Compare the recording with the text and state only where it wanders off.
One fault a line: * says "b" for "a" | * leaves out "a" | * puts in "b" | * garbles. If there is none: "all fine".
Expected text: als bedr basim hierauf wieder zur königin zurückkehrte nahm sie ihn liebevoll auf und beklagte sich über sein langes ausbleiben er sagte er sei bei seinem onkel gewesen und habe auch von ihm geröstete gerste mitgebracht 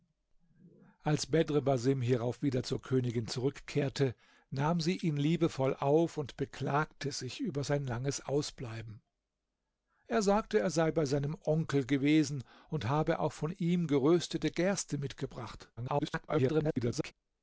* garbles